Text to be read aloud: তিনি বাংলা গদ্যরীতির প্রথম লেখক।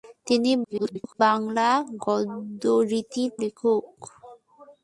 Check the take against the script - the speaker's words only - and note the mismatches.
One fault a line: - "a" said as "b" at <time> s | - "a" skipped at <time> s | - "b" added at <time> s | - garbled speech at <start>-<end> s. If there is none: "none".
- garbled speech at 0.6-1.2 s
- "প্রথম" skipped at 3.3 s